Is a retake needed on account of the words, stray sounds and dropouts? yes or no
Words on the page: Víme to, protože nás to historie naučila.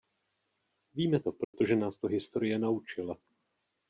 yes